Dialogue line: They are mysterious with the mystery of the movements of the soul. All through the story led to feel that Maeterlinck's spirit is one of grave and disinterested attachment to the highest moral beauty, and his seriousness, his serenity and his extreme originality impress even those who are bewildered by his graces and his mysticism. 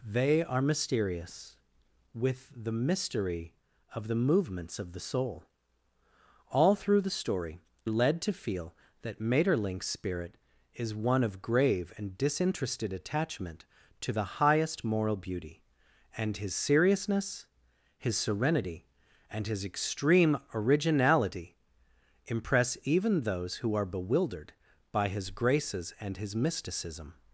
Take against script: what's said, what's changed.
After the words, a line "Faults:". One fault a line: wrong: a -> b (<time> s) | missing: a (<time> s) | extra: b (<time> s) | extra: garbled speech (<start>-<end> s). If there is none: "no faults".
They are mysterious with the mystery of the movements of the soul. All through the story led to feel that Maeterlinck's spirit is one of grave and disinterested attachment to the highest moral beauty, and his seriousness, his serenity and his extreme originality impress even those who are bewildered by his graces and his mysticism.
Faults:
no faults